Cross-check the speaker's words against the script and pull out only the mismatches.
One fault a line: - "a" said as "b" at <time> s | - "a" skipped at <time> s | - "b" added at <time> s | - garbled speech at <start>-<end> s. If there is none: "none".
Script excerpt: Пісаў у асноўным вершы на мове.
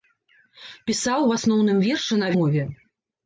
none